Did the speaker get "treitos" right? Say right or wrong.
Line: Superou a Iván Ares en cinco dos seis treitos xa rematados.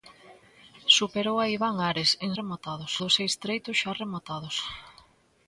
right